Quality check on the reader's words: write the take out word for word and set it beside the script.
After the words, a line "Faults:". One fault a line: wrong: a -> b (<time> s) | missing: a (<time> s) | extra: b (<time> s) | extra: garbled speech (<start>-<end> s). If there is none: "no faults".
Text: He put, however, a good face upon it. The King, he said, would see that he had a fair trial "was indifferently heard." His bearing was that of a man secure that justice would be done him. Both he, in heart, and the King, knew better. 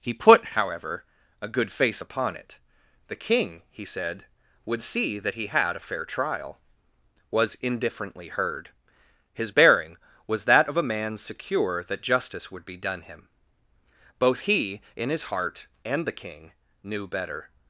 He put, however, a good face upon it. The King, he said, would see that he had a fair trial "was indifferently heard." His bearing was that of a man secure that justice would be done him. Both he, in his heart, and the King, knew better.
Faults:
extra: his (15.1 s)